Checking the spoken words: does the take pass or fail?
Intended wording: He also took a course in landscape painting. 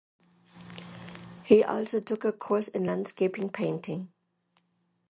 pass